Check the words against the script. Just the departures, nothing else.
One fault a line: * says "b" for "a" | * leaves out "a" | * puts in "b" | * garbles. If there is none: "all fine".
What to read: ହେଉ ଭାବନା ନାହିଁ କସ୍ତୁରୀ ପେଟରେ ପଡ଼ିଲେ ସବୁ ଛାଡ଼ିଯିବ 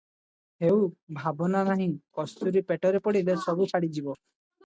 all fine